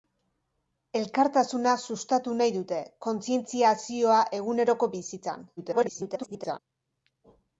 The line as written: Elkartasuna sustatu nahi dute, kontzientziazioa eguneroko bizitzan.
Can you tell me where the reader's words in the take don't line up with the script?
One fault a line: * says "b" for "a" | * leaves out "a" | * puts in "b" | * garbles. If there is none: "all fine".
* garbles